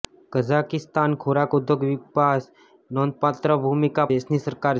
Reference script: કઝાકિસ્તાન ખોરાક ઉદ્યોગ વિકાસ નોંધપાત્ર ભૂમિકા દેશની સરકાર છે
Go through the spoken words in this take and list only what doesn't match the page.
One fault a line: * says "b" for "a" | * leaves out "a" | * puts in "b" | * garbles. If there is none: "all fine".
all fine